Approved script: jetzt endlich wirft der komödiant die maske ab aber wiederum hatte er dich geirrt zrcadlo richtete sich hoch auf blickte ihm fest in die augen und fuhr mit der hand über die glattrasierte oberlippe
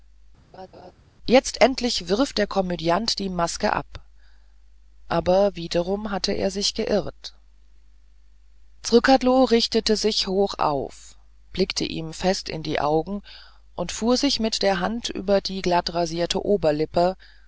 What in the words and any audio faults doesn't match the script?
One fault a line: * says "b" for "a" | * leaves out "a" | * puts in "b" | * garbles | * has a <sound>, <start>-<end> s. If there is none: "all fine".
* has a laugh, 0.5-0.9 s
* says "sich" for "dich"
* puts in "sich"